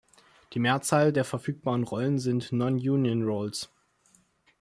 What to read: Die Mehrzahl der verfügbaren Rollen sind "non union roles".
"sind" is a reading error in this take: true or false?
false